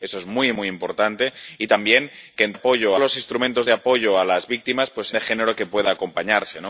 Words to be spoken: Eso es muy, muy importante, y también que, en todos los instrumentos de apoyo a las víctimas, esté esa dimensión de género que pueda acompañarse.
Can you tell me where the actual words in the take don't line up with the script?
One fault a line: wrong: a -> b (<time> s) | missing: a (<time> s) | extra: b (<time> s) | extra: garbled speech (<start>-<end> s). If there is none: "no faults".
wrong: todos -> apoyo (2.5 s)
missing: esté esa dimensión (4.9 s)